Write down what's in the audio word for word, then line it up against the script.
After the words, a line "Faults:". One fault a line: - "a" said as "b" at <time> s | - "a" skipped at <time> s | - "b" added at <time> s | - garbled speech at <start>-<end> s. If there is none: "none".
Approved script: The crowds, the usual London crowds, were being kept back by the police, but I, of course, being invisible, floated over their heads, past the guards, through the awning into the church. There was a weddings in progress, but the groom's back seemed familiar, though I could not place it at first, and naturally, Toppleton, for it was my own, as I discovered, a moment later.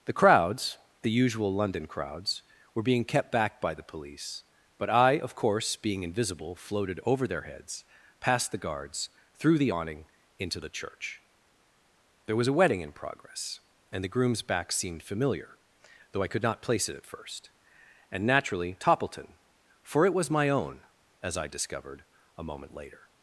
The crowds, the usual London crowds, were being kept back by the police, but I, of course, being invisible, floated over their heads, past the guards, through the awning into the church. There was a wedding in progress, and the groom's back seemed familiar, though I could not place it at first, and naturally, Toppleton, for it was my own, as I discovered, a moment later.
Faults:
- "weddings" said as "wedding" at 12.5 s
- "but" said as "and" at 13.9 s